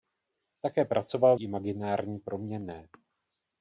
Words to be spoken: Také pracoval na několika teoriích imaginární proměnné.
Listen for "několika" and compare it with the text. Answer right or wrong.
wrong